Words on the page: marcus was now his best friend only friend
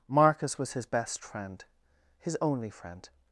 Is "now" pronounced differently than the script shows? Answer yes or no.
yes